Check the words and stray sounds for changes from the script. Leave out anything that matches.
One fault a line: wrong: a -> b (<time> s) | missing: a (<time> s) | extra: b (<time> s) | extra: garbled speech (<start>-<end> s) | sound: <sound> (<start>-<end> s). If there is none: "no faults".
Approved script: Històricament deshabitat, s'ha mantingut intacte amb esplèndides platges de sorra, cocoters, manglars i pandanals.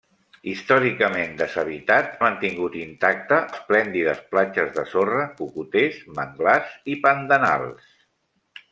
missing: s'ha (2.1 s)
missing: amb (3.4 s)